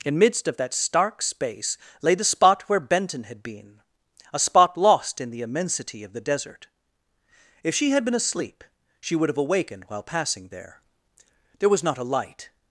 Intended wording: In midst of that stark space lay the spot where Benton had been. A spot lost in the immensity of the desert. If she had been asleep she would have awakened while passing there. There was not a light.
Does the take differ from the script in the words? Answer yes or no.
no